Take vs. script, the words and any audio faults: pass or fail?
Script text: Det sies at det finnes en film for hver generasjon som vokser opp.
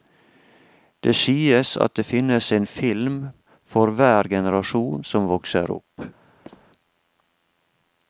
fail